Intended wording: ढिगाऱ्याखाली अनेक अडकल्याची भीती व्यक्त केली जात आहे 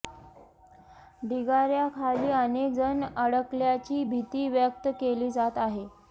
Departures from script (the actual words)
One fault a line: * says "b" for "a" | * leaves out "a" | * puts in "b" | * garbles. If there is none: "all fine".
* puts in "जण"